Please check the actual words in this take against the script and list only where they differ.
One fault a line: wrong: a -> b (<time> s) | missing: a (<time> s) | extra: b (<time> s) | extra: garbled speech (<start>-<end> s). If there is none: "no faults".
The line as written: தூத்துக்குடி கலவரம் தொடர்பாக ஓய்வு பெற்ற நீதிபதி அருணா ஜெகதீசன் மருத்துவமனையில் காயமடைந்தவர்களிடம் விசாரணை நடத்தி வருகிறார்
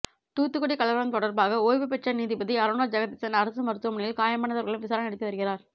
extra: அரசு (3.4 s)